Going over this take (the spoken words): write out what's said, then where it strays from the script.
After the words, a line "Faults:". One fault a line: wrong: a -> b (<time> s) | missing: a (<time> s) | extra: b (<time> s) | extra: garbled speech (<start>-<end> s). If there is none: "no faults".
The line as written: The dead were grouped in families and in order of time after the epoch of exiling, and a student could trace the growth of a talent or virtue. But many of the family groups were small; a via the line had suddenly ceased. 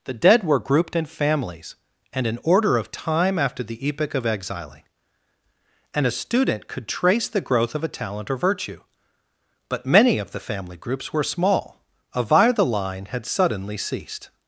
The dead were grouped in families and in order of time after the epoch of exiling, and a student could trace the growth of a talent or virtue. But many of the family groups were small; a via the line had suddenly ceased.
Faults:
no faults